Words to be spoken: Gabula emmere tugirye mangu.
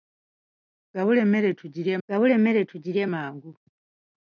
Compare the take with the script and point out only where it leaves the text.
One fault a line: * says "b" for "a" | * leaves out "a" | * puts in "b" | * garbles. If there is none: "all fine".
* puts in "gabula emmere tugirye"